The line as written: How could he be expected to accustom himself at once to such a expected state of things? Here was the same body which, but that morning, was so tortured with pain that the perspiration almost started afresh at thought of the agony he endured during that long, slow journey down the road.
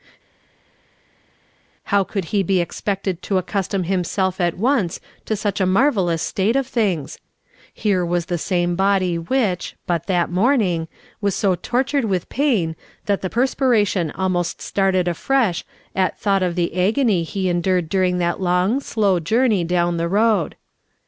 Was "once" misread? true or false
false